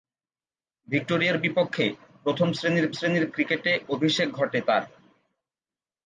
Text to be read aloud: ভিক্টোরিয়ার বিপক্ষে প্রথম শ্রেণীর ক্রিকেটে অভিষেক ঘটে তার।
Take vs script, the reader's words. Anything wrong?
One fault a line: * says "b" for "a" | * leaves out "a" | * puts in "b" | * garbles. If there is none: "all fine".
* puts in "শ্রেণীর"